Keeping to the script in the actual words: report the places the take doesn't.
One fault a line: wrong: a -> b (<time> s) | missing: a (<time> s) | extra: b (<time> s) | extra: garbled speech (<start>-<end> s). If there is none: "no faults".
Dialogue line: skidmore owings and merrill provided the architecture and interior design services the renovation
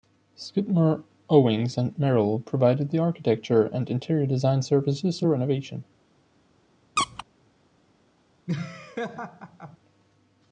no faults